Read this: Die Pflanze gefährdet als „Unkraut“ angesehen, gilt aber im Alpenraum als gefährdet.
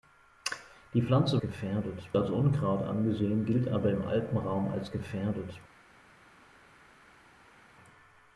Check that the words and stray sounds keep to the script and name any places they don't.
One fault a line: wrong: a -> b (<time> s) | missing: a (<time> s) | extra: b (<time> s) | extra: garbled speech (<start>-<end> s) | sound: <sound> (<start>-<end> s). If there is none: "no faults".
no faults